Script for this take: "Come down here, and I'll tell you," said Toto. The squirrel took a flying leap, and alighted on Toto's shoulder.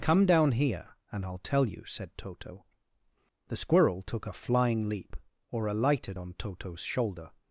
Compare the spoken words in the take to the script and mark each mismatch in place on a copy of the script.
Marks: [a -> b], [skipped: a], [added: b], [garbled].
"Come down here, and I'll tell you," said Toto. The squirrel took a flying leap, [and -> or] alighted on Toto's shoulder.